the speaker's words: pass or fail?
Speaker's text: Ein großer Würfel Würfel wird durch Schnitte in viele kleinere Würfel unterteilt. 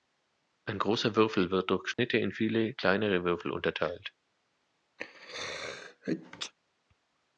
fail